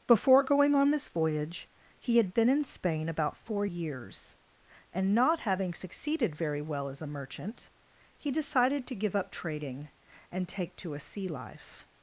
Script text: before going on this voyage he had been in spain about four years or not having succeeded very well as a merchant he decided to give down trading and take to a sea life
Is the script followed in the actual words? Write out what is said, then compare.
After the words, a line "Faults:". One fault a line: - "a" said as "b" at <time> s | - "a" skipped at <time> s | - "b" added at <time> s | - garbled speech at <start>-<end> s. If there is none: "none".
before going on this voyage he had been in spain about four years and not having succeeded very well as a merchant he decided to give up trading and take to a sea life
Faults:
- "or" said as "and" at 4.9 s
- "down" said as "up" at 9.1 s